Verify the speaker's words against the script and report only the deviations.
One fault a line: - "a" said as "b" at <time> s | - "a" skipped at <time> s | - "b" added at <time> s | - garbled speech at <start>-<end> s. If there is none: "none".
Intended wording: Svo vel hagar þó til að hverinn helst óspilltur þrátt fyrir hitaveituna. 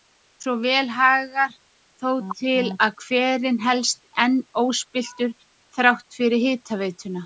- "enn" added at 4.3 s